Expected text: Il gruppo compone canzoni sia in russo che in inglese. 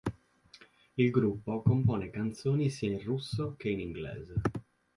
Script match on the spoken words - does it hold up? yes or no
yes